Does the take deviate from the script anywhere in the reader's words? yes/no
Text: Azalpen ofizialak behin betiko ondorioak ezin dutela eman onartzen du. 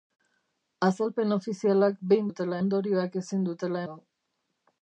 yes